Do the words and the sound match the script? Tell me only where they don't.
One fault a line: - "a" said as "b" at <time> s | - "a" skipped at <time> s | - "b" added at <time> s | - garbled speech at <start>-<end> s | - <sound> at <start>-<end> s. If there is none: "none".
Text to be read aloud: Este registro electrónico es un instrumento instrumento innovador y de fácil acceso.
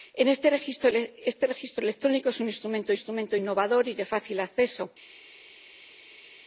none